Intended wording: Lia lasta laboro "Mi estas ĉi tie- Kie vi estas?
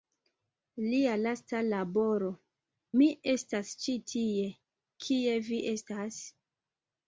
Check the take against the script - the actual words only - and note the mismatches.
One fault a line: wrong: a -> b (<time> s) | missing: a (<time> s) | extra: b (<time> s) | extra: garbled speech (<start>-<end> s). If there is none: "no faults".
no faults